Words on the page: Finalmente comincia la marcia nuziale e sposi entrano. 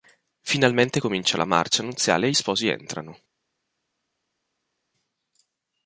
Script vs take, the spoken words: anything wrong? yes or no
no